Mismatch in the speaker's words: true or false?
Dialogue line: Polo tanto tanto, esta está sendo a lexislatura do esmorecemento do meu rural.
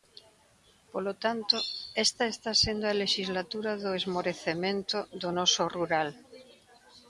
true